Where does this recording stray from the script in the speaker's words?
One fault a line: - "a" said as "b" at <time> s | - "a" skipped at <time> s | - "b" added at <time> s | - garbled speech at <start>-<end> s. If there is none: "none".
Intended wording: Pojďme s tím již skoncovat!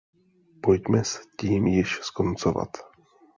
none